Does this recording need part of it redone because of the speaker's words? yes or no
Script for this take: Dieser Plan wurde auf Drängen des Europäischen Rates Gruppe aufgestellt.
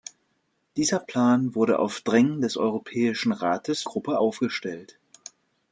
no